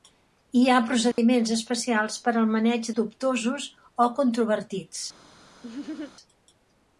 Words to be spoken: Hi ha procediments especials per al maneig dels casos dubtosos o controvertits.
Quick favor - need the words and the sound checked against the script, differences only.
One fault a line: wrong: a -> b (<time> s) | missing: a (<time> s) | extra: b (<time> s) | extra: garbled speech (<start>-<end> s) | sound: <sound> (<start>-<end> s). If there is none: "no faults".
sound: dropout (1.1-1.2 s)
missing: dels casos (2.9 s)
sound: laugh (5.6-6.1 s)